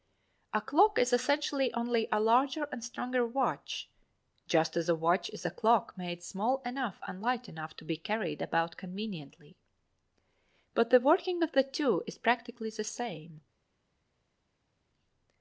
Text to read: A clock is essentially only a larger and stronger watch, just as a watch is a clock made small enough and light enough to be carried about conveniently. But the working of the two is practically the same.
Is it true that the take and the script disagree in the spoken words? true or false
false